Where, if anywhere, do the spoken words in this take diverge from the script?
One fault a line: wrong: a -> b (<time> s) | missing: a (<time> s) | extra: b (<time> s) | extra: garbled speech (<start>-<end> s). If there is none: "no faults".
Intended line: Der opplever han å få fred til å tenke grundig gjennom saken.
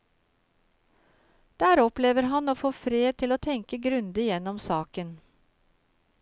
no faults